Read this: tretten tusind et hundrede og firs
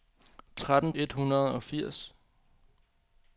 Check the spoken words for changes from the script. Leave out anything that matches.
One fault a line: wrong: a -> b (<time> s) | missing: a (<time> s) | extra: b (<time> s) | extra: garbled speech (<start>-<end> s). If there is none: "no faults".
missing: tusind (0.9 s)